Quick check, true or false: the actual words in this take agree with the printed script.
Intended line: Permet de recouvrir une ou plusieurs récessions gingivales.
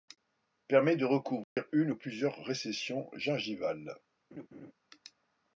true